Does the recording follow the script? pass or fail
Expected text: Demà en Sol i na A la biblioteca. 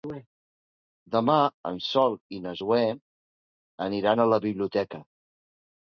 fail